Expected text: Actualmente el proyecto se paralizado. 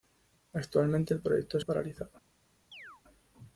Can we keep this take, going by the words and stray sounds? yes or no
no